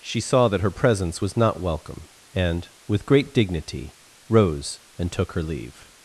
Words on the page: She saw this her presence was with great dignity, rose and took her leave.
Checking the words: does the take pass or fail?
fail